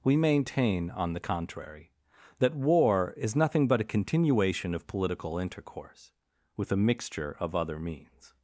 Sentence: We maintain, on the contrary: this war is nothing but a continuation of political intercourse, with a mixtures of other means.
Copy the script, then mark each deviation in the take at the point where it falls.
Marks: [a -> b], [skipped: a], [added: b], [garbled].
We maintain, on the contrary: [this -> that] war is nothing but a continuation of political intercourse, with a [mixtures -> mixture] of other means.